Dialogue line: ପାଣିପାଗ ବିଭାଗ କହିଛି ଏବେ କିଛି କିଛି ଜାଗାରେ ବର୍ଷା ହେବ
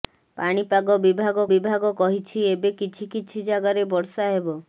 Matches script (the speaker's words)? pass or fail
fail